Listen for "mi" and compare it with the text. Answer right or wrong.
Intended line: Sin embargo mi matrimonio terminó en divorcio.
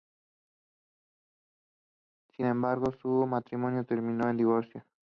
wrong